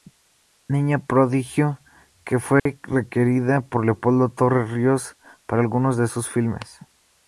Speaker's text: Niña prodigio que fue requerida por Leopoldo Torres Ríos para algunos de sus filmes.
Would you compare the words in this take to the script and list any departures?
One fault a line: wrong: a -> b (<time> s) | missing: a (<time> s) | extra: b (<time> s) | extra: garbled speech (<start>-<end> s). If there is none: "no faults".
no faults